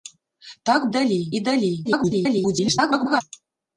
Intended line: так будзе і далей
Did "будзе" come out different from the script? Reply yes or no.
yes